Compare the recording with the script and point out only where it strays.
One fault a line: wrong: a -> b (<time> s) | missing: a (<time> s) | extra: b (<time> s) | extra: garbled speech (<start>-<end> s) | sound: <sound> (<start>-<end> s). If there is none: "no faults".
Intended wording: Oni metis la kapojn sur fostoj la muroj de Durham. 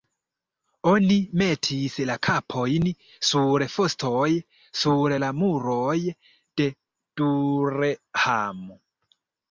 extra: sur (4.8 s)